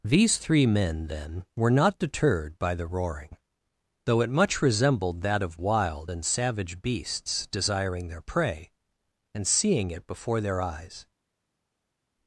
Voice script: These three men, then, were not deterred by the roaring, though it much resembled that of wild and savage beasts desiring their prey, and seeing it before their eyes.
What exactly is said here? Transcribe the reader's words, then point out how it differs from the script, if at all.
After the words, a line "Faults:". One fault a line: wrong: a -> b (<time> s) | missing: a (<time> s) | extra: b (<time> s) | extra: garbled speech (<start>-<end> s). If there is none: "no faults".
These three men, then, were not deterred by the roaring, though it much resembled that of wild and savage beasts desiring their prey, and seeing it before their eyes.
Faults:
no faults